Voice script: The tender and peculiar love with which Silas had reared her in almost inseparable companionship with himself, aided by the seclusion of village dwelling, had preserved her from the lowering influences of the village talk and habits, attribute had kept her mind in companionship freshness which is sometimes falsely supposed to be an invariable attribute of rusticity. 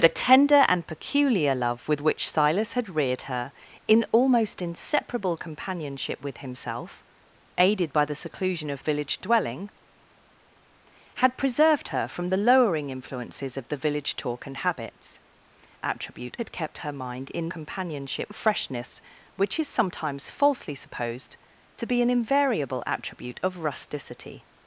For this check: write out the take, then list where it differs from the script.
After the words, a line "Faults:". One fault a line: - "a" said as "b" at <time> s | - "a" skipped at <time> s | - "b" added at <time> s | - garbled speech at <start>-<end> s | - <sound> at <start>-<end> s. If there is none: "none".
The tender and peculiar love with which Silas had reared her in almost inseparable companionship with himself, aided by the seclusion of village dwelling, had preserved her from the lowering influences of the village talk and habits, attribute had kept her mind in companionship freshness which is sometimes falsely supposed to be an invariable attribute of rusticity.
Faults:
none